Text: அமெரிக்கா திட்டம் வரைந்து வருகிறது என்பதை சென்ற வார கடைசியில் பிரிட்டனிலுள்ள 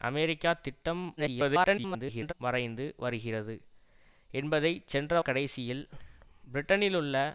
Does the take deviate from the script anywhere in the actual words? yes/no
yes